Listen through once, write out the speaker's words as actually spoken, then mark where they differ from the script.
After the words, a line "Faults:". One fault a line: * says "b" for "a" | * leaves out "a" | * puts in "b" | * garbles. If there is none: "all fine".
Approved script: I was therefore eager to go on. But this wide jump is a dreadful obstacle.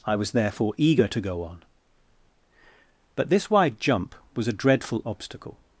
I was therefore eager to go on. But this wide jump was a dreadful obstacle.
Faults:
* says "was" for "is"